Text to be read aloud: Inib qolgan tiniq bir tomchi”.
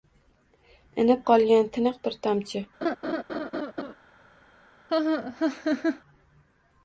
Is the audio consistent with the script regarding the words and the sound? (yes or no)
no